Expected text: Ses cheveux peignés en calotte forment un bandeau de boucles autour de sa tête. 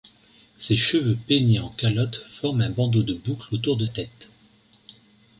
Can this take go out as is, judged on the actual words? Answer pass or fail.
fail